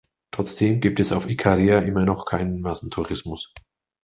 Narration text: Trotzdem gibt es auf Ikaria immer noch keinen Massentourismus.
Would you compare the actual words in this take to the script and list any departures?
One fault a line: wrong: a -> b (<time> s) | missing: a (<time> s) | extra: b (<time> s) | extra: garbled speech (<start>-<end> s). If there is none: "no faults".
no faults